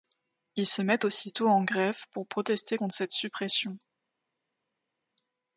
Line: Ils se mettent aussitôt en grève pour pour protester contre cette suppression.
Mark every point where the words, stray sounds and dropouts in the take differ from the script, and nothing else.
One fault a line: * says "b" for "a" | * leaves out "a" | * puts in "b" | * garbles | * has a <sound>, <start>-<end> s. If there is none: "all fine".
* leaves out "pour"